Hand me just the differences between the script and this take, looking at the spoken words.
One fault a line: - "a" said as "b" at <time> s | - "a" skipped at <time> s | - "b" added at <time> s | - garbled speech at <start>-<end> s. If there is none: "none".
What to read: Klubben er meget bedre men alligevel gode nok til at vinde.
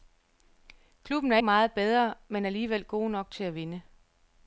none